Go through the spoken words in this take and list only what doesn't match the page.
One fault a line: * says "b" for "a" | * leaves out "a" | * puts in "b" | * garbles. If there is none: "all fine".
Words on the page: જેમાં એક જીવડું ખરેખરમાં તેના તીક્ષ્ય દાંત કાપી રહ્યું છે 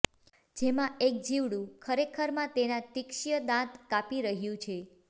all fine